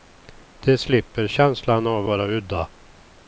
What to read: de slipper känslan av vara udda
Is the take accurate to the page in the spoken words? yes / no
yes